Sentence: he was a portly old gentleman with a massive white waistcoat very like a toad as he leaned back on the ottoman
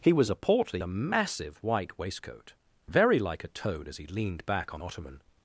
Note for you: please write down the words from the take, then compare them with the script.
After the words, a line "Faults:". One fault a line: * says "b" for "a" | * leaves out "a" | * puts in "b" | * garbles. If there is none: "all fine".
he was a portly a massive white waistcoat very like a toad as he leaned back on ottoman
Faults:
* leaves out "old gentleman with"
* leaves out "the"